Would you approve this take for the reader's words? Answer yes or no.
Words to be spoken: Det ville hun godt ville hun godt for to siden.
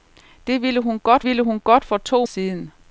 yes